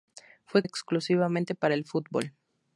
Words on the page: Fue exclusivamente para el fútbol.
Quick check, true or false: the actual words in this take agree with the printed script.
true